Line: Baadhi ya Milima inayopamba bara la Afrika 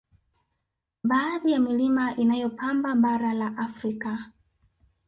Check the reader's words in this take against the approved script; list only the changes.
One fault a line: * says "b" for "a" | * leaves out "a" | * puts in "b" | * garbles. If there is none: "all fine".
all fine